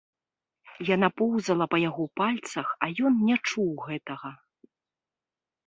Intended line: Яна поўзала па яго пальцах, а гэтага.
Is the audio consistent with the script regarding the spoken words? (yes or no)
no